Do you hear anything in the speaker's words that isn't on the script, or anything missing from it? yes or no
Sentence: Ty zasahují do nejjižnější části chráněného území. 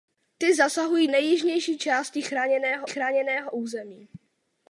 yes